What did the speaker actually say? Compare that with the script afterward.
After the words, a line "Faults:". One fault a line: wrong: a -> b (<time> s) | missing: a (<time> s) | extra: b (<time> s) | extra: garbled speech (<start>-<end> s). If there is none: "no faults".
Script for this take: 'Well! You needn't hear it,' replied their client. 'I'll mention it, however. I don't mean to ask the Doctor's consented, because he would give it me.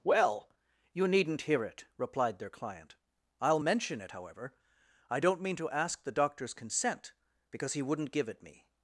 'Well! You needn't hear it,' replied their client. 'I'll mention it, however. I don't mean to ask the Doctor's consent, because he wouldn't give it me.
Faults:
wrong: consented -> consent (6.5 s)
wrong: would -> wouldn't (7.8 s)